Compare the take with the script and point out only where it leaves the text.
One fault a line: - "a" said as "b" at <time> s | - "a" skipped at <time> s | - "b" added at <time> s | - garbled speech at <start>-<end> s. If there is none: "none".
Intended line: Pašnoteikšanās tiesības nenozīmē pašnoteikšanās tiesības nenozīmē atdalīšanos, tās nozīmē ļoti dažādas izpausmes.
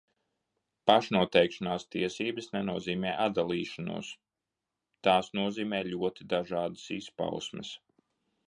- "pašnoteikšanās tiesības nenozīmē" skipped at 3.1 s